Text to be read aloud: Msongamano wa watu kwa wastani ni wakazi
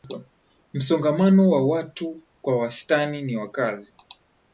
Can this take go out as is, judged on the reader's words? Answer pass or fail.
pass